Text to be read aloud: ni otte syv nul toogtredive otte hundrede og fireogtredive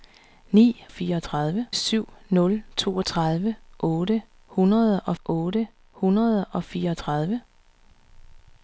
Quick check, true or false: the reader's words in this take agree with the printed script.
false